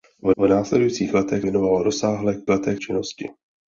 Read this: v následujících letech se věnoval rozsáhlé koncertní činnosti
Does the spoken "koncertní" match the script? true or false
false